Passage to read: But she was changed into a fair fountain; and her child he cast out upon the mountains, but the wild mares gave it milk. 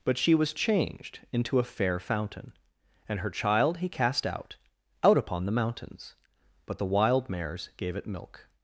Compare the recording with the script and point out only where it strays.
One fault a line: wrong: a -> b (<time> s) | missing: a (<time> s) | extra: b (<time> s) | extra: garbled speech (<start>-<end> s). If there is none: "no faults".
extra: out (5.0 s)